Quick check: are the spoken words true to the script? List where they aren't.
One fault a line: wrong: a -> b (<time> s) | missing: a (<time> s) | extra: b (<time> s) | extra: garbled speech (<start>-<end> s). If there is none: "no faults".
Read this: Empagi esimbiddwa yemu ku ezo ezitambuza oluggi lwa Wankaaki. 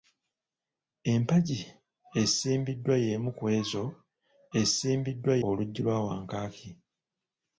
wrong: ezitambuza -> esimbiddwa (4.6 s)